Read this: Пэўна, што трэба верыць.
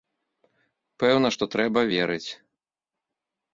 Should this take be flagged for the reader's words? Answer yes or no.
no